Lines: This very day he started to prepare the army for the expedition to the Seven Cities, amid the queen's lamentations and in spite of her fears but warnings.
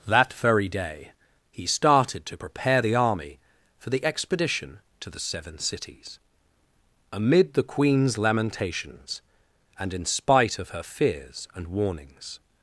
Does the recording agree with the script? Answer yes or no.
no